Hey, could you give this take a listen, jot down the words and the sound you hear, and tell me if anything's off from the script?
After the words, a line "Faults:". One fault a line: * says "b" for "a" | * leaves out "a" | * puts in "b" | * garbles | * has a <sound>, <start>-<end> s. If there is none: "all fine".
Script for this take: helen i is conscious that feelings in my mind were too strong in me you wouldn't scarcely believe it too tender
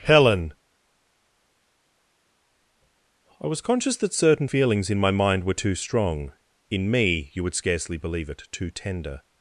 helen i was conscious that certain feelings in my mind were too strong in me you would scarcely believe it too tender
Faults:
* says "was" for "is"
* puts in "certain"
* says "would" for "wouldn't"